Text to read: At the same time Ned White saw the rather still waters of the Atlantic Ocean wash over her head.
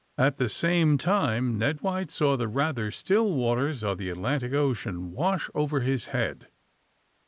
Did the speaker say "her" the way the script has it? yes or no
no